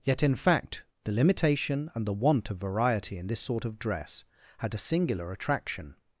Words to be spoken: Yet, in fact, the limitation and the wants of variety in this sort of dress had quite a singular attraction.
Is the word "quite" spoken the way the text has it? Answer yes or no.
no